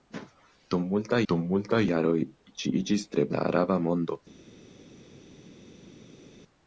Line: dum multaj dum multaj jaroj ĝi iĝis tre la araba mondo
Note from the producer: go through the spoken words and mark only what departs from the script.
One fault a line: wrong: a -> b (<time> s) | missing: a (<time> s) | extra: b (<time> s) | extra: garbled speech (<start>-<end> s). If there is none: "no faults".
no faults